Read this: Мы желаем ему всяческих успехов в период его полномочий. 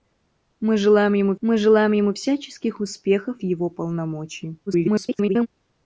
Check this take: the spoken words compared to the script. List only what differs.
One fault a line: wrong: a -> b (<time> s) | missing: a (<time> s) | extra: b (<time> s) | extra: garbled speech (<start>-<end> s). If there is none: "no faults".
extra: мы желаем ему (1.4 s)
missing: в период (3.4 s)
extra: garbled speech (4.7-5.5 s)